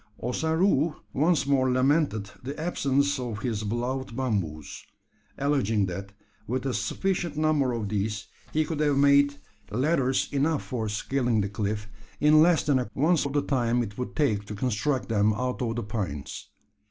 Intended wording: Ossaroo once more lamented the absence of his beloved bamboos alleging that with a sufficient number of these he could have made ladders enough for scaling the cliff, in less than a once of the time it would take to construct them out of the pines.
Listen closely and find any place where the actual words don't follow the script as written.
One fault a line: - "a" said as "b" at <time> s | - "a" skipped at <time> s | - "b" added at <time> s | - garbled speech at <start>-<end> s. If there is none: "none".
none